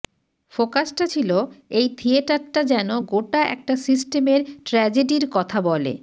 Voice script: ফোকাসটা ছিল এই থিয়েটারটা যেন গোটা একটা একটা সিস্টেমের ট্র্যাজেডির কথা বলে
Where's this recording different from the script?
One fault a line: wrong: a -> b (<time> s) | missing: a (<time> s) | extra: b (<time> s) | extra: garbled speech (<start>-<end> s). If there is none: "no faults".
missing: একটা (3.7 s)